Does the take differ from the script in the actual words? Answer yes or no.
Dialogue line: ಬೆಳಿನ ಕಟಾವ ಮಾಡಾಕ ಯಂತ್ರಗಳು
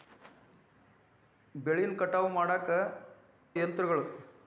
no